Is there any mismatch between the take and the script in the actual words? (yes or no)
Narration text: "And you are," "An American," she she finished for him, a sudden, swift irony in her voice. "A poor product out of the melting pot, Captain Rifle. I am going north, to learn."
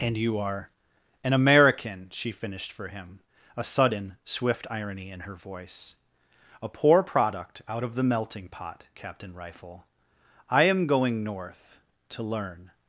yes